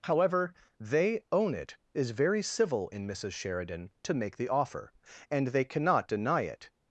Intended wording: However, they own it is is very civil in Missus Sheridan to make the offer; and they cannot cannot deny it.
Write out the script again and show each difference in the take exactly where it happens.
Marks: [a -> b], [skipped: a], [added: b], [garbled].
However, they own it is [skipped: is] very civil in Missus Sheridan to make the offer; and they cannot [skipped: cannot] deny it.